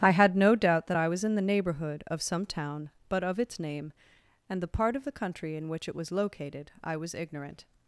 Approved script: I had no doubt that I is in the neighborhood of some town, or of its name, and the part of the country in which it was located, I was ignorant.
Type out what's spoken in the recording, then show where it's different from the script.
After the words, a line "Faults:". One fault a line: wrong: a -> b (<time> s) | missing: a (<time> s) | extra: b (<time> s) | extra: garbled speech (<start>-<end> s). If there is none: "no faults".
I had no doubt that I was in the neighborhood of some town, but of its name, and the part of the country in which it was located, I was ignorant.
Faults:
wrong: is -> was (1.1 s)
wrong: or -> but (3.1 s)